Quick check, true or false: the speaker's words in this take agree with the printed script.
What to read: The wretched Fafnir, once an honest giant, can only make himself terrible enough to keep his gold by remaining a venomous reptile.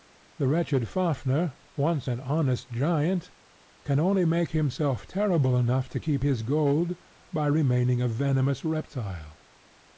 true